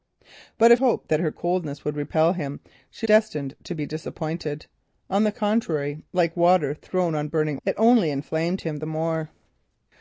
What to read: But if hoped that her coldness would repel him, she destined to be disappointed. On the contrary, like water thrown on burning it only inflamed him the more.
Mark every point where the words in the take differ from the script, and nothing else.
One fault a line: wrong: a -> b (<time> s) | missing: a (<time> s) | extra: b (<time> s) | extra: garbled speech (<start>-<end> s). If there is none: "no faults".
no faults